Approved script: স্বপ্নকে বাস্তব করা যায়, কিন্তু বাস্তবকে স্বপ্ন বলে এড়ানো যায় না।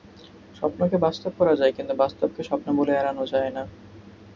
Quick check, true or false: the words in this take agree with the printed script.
true